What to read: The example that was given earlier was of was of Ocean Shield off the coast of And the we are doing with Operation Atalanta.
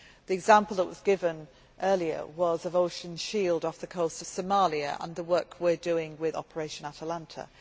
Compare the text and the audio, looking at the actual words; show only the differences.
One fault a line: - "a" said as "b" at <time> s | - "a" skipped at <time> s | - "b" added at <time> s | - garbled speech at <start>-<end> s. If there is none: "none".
- "was of" skipped at 2.8 s
- "Somalia" added at 4.2 s
- "work" added at 5.2 s